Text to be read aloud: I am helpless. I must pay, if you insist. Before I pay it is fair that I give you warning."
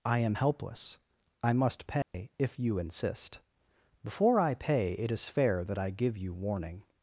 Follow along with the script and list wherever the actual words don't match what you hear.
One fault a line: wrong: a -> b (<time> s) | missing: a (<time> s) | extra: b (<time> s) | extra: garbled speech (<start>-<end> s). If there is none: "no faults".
no faults